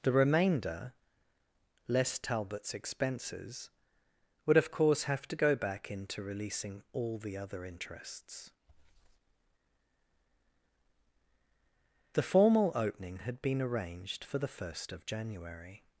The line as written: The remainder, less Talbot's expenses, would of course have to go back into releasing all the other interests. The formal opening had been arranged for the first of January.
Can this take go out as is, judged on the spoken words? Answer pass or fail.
pass